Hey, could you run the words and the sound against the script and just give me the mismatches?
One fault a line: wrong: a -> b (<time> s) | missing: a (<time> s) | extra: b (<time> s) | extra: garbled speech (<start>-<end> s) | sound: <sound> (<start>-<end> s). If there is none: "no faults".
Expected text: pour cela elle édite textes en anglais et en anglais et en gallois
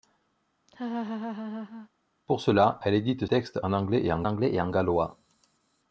sound: laugh (0.7-1.9 s)